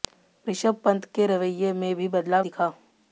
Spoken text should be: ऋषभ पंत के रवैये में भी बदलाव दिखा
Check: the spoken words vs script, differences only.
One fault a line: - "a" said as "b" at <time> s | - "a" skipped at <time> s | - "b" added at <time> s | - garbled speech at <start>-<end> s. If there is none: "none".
none